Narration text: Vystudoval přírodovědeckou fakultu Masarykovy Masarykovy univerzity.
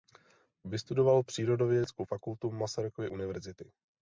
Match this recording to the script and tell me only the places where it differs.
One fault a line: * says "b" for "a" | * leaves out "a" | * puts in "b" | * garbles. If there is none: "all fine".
* leaves out "Masarykovy"